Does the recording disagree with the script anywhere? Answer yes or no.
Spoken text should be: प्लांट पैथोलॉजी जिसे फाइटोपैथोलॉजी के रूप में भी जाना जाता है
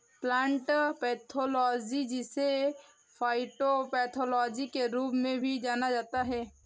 no